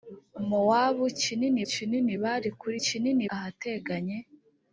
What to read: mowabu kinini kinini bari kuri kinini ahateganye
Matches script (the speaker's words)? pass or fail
pass